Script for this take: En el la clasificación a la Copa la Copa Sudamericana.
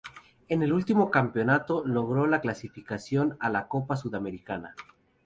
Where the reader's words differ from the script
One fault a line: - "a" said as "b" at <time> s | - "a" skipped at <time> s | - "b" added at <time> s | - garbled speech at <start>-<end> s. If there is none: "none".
- "último campeonato logró" added at 0.7 s
- "la Copa" skipped at 3.9 s